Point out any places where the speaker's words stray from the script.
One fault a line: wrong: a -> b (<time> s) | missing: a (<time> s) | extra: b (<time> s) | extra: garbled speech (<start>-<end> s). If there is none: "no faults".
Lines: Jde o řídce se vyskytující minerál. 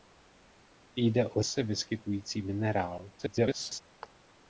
missing: řídce (1.4 s)
extra: garbled speech (3.2-3.8 s)